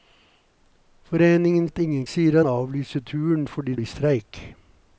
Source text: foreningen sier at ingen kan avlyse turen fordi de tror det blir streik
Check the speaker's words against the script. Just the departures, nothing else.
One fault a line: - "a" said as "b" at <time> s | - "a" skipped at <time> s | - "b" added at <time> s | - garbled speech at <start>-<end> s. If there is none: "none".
- "sier" skipped at 1.7 s
- "kan" said as "sier" at 2.1 s
- "de tror det" skipped at 3.7 s